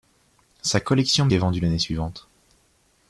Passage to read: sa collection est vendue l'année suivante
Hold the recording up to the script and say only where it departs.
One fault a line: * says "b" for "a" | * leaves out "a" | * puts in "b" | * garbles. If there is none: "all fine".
all fine